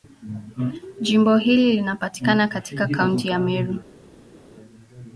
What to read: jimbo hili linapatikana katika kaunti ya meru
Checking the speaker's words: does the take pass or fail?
pass